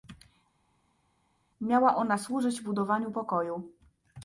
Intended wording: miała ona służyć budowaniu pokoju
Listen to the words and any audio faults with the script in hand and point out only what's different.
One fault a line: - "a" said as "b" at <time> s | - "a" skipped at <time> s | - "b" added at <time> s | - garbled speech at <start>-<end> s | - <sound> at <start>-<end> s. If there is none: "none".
none